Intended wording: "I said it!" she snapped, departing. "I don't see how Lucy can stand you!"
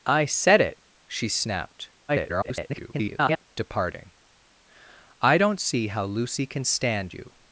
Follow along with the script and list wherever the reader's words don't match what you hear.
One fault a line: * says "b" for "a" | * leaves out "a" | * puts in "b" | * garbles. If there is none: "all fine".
* garbles